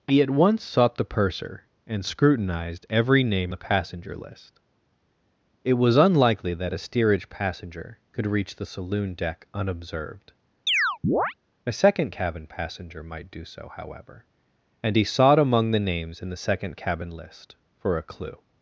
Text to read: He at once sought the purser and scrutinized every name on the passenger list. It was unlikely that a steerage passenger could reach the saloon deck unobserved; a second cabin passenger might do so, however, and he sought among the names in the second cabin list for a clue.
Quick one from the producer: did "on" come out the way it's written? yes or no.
no